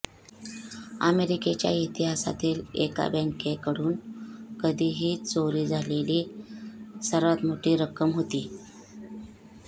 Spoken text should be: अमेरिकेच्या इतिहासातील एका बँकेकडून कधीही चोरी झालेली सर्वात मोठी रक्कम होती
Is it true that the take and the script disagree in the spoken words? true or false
false